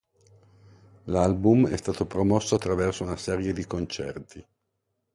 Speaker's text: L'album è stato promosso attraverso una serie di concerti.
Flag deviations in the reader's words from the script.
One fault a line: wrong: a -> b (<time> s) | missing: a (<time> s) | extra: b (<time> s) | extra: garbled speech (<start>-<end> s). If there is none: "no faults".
no faults